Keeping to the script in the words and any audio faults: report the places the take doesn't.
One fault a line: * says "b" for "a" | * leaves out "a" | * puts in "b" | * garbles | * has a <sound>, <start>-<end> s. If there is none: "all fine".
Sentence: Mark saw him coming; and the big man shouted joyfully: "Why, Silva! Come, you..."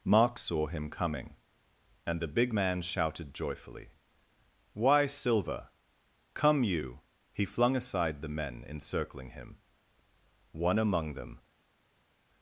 * puts in "He flung aside the men encircling him One among them"